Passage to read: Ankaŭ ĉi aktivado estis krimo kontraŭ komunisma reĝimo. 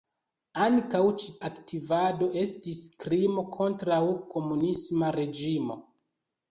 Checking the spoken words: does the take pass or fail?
pass